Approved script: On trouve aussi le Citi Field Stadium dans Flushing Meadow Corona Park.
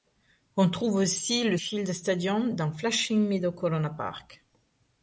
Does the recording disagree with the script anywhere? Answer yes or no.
yes